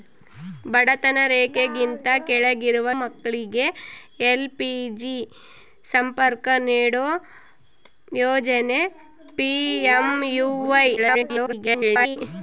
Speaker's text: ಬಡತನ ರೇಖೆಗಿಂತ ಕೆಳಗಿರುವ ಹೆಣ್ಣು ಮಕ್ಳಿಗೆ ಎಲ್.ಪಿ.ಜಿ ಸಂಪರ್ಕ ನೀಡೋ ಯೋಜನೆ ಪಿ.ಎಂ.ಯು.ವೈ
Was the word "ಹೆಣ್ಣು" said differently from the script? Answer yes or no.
yes